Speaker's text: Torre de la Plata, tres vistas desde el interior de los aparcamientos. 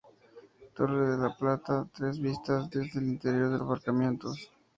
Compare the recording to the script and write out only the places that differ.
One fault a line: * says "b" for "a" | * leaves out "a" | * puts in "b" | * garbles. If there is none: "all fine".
* leaves out "los"